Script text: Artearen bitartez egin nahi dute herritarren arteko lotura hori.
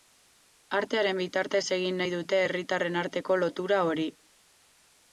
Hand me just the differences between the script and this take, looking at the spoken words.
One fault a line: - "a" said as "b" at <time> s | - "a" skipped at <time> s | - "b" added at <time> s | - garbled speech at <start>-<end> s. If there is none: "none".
none